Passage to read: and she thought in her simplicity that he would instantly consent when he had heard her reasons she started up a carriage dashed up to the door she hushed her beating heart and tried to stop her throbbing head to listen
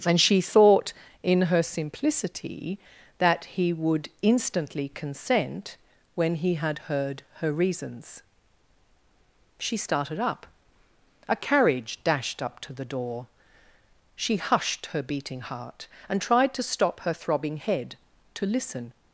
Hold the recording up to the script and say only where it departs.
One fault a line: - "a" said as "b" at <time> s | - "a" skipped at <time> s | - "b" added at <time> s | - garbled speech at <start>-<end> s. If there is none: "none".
none